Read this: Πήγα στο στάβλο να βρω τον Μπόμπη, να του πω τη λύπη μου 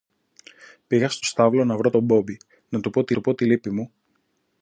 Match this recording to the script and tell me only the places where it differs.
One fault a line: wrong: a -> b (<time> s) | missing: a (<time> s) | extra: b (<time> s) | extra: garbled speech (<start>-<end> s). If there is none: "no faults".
extra: του πω τη (3.1 s)